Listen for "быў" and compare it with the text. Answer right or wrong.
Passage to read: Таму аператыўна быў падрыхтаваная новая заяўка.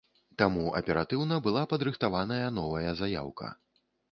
wrong